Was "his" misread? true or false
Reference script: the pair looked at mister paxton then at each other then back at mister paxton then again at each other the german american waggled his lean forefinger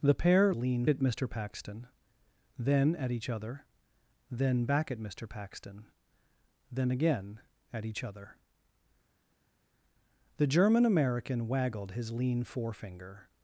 false